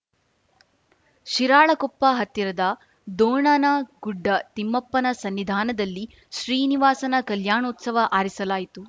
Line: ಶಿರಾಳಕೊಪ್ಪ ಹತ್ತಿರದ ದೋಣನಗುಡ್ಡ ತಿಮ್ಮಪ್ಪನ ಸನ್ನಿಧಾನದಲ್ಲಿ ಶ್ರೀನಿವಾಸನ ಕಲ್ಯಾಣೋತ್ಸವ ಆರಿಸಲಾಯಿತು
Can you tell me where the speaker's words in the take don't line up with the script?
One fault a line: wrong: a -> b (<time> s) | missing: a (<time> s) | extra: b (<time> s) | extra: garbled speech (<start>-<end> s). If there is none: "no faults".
no faults